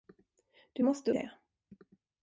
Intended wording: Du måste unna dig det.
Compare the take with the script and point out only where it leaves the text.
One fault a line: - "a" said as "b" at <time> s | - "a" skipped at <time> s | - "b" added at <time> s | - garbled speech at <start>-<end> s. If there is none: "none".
- "unna dig" skipped at 1.1 s